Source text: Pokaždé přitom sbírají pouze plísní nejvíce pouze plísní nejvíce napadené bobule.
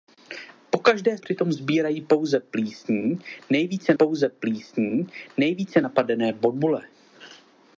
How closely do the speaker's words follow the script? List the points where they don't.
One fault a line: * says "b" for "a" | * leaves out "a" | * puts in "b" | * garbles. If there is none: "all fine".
all fine